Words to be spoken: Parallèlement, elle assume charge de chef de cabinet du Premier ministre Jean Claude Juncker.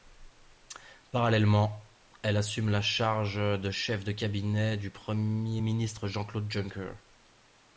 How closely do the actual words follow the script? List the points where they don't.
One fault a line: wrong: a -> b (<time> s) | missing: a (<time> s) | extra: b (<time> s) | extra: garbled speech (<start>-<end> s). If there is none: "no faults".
extra: la (2.7 s)